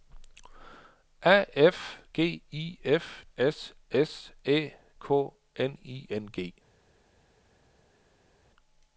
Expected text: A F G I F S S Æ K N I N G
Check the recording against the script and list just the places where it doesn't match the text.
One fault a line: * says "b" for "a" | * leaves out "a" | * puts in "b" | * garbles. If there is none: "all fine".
all fine